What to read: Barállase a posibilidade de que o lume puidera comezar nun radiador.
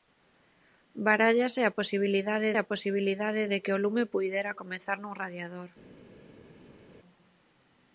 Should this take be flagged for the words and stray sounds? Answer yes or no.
yes